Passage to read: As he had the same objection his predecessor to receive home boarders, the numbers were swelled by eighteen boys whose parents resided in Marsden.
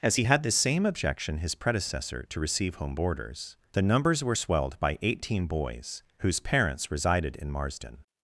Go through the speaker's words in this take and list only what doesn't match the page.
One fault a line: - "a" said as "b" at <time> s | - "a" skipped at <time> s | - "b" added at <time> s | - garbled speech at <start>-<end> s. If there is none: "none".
none